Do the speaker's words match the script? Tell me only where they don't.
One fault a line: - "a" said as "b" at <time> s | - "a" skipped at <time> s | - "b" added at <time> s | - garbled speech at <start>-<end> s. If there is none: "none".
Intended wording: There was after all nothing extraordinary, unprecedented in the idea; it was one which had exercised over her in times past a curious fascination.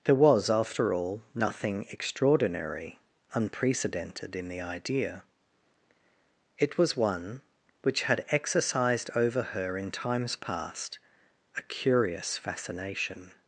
none